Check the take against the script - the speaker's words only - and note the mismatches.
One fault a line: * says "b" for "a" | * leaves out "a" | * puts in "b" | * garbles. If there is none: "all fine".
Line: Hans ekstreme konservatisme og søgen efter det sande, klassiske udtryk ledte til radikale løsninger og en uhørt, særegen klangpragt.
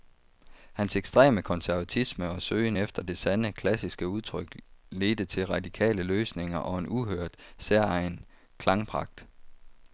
all fine